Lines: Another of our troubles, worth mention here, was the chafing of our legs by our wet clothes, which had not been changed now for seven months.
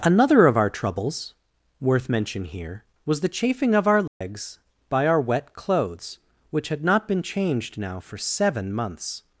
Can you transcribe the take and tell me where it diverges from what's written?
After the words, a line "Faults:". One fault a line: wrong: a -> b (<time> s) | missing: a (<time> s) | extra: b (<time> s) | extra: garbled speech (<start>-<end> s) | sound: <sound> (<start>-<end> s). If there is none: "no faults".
Another of our troubles, worth mention here, was the chafing of our legs by our wet clothes, which had not been changed now for seven months.
Faults:
sound: dropout (4.1-4.2 s)